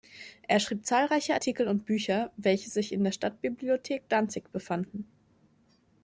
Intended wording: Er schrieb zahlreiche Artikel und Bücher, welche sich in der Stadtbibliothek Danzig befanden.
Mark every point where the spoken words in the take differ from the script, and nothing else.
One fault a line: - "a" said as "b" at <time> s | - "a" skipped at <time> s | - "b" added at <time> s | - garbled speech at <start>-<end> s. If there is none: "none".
none